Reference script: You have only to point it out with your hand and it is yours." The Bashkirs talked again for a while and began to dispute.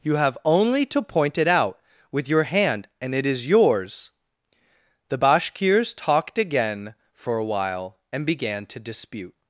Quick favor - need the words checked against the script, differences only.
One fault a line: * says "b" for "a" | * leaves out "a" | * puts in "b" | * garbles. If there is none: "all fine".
all fine